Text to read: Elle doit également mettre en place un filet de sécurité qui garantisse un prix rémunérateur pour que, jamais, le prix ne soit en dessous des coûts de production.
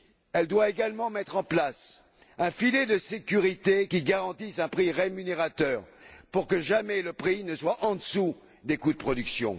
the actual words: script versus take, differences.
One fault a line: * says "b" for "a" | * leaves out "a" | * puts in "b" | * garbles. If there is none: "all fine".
all fine